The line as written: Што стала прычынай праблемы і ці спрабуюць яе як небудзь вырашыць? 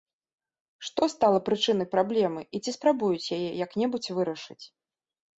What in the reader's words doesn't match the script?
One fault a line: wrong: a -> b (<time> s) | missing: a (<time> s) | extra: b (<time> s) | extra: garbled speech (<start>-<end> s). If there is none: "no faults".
no faults